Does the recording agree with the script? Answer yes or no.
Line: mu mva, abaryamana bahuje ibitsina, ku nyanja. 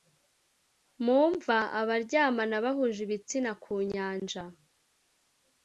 yes